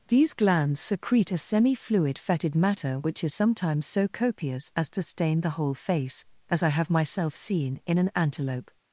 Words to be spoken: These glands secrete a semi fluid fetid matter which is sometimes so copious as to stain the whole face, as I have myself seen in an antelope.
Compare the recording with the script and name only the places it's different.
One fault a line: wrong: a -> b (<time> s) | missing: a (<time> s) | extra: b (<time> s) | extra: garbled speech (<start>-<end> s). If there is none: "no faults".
no faults